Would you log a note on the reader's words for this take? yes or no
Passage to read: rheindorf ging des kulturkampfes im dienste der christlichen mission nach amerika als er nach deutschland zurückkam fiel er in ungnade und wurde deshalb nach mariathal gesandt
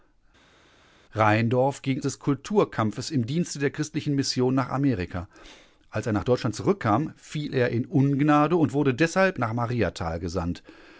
no